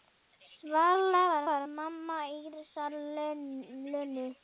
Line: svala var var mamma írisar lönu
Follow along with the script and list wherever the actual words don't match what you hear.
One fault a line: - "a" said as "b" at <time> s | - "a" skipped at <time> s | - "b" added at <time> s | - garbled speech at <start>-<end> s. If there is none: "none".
none